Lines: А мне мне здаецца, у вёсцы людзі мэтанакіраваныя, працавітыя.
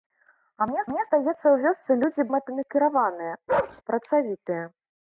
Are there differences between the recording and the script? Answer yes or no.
no